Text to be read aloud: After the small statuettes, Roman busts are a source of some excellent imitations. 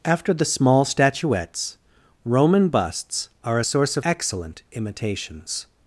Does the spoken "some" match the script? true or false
false